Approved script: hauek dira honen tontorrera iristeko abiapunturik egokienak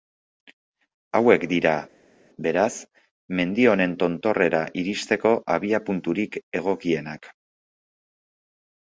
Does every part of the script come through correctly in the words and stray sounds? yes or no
no